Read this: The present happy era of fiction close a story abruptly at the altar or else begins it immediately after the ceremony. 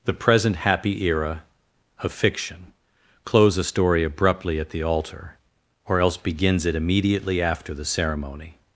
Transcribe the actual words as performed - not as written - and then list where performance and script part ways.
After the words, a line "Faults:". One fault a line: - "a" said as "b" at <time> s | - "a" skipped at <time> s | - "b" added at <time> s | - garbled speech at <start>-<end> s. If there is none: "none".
The present happy era of fiction close a story abruptly at the altar or else begins it immediately after the ceremony.
Faults:
none